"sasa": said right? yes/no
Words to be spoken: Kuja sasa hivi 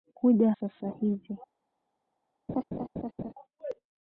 yes